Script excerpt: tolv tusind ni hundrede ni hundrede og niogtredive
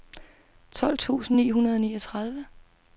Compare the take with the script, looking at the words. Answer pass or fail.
fail